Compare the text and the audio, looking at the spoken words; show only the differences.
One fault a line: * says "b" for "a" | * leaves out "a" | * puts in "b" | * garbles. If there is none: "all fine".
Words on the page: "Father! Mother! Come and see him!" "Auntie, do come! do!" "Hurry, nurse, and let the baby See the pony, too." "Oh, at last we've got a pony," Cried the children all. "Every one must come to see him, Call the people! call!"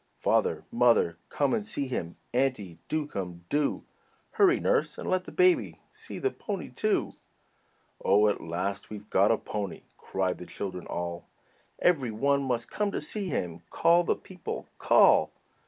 all fine